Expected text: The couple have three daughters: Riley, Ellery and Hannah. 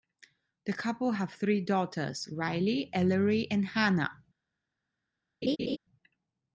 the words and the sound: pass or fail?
fail